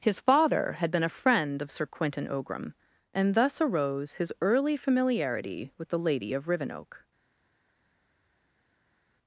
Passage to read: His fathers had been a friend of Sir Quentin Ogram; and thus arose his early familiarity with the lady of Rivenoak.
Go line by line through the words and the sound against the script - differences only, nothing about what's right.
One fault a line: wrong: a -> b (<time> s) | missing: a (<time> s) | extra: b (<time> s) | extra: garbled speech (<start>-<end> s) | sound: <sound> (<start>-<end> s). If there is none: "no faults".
wrong: fathers -> father (0.2 s)